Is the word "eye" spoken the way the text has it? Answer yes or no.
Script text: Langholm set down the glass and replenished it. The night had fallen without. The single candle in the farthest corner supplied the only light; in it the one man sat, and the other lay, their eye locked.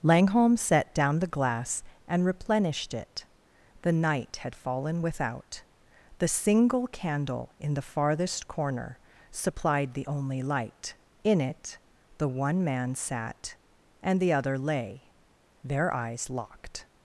no